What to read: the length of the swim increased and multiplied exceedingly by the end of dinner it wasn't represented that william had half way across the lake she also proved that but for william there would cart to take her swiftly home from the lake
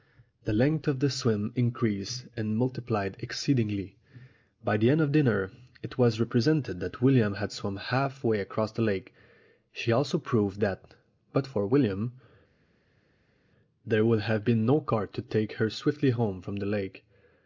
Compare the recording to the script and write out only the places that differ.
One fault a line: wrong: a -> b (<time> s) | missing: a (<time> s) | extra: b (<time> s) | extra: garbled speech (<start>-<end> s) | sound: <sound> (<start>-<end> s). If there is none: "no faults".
wrong: wasn't -> was (6.0 s)
extra: swum (7.5 s)
extra: have been no (14.2 s)